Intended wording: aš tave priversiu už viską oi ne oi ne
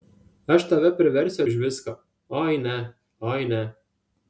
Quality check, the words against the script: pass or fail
pass